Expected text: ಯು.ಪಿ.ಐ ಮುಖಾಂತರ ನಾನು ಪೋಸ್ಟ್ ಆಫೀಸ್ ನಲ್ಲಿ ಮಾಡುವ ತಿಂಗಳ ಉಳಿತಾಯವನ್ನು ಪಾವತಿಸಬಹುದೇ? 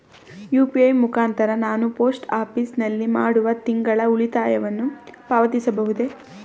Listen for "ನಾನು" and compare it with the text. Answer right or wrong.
right